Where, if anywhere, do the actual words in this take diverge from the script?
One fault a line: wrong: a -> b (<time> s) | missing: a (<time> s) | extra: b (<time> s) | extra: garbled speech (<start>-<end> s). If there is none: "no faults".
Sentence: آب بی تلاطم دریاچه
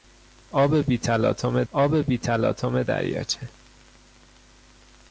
extra: آب بی تلاطم (1.7 s)